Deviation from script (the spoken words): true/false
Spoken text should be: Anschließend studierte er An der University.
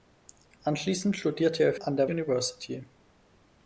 false